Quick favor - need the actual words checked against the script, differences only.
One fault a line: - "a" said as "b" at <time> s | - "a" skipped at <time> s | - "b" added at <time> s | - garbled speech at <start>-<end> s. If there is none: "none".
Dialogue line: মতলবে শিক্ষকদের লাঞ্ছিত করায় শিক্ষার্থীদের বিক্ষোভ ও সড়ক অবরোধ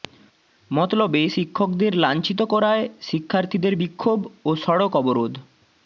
none